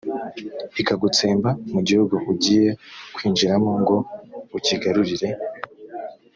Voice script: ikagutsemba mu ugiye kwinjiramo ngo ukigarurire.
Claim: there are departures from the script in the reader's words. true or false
true